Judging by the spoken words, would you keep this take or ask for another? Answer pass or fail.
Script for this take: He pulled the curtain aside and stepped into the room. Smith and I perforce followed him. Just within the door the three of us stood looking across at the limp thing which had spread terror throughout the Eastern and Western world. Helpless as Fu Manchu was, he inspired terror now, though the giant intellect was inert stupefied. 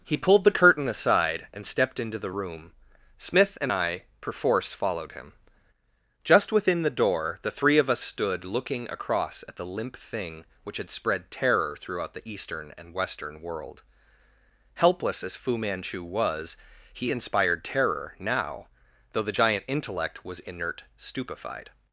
pass